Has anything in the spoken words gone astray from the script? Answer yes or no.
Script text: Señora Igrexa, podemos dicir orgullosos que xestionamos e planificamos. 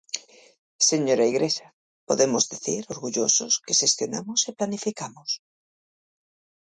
no